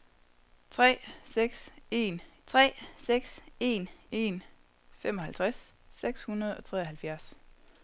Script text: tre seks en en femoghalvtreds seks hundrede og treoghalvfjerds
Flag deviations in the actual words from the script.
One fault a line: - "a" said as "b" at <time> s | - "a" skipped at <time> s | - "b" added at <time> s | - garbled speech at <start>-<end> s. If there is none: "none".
- "tre seks en" added at 2.5 s